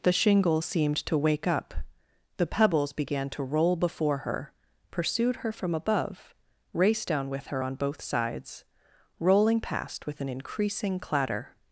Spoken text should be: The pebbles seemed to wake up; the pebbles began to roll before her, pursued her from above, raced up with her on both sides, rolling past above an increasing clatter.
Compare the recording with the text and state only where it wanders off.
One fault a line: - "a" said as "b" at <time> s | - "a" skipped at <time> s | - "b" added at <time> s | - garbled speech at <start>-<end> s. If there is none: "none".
- "pebbles" said as "shingle" at 0.1 s
- "up" said as "down" at 7.1 s
- "above" said as "with" at 10.1 s